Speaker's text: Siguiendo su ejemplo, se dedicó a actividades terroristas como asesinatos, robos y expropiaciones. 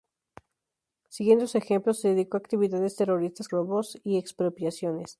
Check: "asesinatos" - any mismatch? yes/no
yes